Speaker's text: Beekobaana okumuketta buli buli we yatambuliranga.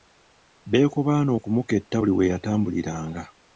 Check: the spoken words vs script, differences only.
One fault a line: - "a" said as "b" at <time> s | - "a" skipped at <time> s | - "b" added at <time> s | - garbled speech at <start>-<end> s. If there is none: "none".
- "buli" skipped at 2.1 s